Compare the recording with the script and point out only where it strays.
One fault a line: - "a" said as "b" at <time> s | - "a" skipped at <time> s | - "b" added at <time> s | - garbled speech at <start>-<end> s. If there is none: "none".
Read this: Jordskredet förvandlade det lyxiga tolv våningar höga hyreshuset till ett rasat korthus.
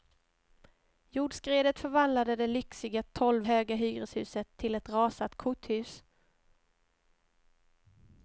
- "våningar" skipped at 3.4 s